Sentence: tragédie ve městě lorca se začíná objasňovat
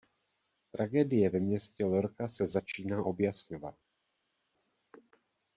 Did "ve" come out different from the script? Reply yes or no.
no